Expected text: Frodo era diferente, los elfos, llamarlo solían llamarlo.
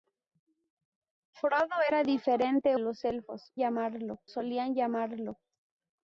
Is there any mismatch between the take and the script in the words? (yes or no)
no